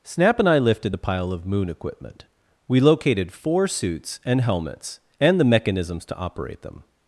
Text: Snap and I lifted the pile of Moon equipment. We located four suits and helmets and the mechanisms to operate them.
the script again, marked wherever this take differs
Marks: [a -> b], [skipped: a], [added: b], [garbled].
Snap and I lifted the pile of Moon equipment. We located four suits and helmets and the mechanisms to operate them.